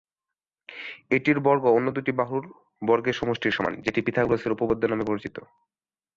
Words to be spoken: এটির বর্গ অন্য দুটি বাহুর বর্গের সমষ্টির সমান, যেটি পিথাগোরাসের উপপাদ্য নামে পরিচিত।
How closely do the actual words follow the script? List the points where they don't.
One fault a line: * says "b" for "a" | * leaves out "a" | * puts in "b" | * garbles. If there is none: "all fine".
all fine